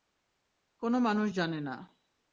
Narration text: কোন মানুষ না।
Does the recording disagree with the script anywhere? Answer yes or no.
yes